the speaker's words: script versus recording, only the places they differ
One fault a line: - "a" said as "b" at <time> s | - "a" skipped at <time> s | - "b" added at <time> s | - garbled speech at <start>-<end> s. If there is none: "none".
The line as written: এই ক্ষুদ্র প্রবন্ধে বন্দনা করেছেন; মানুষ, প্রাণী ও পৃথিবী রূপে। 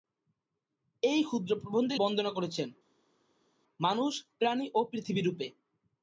none